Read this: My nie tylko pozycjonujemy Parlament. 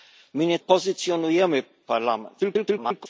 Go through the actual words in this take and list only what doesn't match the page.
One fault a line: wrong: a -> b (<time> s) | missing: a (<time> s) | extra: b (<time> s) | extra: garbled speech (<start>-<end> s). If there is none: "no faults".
missing: tylko (0.6 s)
extra: garbled speech (2.4-3.1 s)